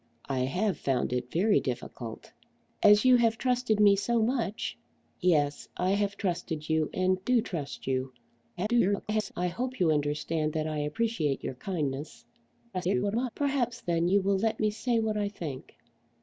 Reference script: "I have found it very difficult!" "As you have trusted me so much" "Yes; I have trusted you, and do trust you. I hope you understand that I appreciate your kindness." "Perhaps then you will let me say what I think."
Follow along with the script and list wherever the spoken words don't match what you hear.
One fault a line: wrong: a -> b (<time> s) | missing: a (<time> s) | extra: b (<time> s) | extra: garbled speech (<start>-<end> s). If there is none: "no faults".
extra: garbled speech (8.6-9.3 s)
extra: garbled speech (12.7-13.3 s)